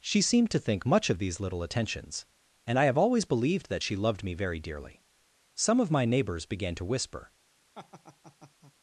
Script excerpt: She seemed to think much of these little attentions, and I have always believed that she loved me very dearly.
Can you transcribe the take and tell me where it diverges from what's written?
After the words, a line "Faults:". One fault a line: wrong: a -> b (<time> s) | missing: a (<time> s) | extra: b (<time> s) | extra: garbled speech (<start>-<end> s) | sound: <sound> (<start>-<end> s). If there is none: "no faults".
She seemed to think much of these little attentions, and I have always believed that she loved me very dearly. Some of my neighbors began to whisper
Faults:
extra: Some of my neighbors began to whisper (5.6 s)
sound: laugh (7.7-8.7 s)